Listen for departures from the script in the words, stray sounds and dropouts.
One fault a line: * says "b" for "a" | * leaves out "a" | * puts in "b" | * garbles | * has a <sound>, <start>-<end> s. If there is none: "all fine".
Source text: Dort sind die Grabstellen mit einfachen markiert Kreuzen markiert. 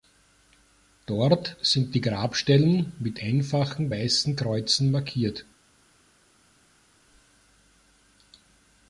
* says "weißen" for "markiert"